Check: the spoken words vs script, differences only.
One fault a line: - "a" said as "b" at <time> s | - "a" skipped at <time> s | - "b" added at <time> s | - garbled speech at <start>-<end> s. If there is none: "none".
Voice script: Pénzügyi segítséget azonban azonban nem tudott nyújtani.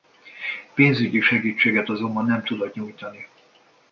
- "azonban" skipped at 2.3 s